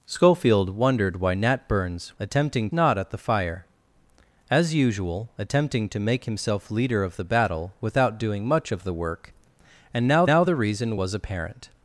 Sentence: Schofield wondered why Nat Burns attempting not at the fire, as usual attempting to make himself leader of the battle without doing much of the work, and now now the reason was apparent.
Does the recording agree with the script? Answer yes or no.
yes